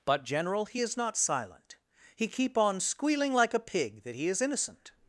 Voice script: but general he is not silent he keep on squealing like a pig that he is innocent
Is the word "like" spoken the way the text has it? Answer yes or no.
yes